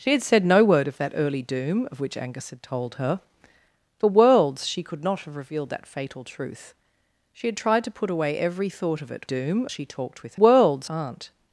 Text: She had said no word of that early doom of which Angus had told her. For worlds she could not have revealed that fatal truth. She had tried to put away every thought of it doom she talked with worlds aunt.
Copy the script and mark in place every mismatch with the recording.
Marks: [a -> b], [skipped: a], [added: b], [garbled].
She had said no word of that early doom of which Angus had told her. For worlds she could not have revealed that fatal truth. She had tried to put away every thought of it doom she talked with worlds aunt.